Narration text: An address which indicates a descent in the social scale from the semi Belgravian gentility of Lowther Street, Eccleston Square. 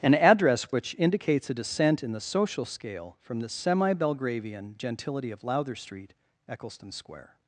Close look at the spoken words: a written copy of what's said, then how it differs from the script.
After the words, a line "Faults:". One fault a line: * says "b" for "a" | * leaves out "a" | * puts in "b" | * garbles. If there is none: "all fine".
An address which indicates a descent in the social scale from the semi Belgravian gentility of Lowther Street, Eccleston Square.
Faults:
all fine